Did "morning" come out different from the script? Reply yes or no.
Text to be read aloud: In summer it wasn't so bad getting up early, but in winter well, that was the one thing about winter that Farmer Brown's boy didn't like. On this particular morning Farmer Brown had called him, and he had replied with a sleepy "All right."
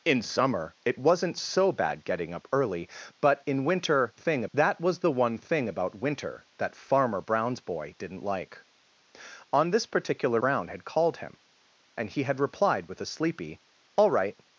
yes